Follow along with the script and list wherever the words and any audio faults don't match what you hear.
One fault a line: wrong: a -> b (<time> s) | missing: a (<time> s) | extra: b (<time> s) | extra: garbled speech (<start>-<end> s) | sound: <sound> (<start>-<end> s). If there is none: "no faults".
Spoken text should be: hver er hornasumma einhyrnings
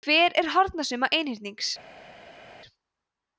no faults